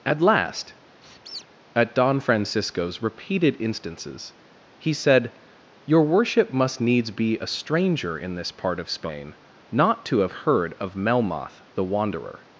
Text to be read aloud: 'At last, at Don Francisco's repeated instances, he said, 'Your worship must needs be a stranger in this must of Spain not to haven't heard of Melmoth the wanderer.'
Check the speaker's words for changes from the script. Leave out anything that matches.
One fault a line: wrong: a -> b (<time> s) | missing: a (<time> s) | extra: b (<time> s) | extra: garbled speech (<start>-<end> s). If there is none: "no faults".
wrong: must -> part (8.5 s)
wrong: haven't -> have (10.2 s)